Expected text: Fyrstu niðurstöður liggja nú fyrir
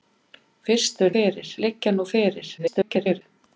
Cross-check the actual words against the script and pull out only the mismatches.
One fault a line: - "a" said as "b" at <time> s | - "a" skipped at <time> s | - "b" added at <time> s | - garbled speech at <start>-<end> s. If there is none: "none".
- "niðurstöður" said as "fyrir" at 1.2 s
- garbled speech at 2.6-3.2 s